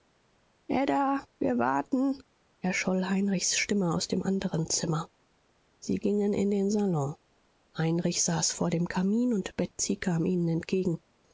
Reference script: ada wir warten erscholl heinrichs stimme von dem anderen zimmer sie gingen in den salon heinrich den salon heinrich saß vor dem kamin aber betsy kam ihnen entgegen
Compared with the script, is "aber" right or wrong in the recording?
wrong